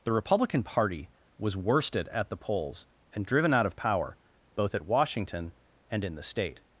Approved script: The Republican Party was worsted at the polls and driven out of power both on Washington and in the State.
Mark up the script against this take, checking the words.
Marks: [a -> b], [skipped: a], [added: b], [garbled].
The Republican Party was worsted at the polls and driven out of power both [on -> at] Washington and in the State.